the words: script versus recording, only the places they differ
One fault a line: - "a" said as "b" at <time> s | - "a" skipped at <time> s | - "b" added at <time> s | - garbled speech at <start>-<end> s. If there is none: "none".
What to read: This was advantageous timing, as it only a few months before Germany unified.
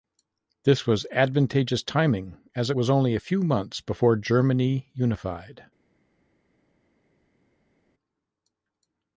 - "was" added at 2.7 s